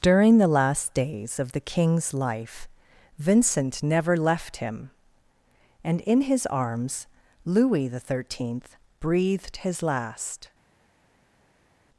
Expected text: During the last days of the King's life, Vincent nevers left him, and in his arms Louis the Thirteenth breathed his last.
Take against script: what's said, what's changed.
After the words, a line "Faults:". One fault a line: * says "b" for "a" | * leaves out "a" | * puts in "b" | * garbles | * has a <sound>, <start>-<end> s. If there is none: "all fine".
During the last days of the King's life, Vincent never left him, and in his arms Louis the Thirteenth breathed his last.
Faults:
* says "never" for "nevers"